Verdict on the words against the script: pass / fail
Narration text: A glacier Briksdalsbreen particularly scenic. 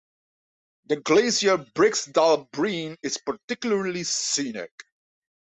fail